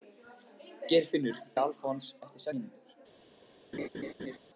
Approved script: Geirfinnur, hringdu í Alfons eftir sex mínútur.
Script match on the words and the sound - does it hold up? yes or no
no